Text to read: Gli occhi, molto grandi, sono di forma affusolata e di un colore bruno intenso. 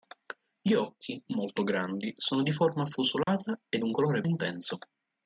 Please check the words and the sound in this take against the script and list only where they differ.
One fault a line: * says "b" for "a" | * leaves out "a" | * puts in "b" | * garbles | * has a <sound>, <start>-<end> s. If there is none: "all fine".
* has a dropout, 3.2-3.3 s
* leaves out "di"
* leaves out "bruno"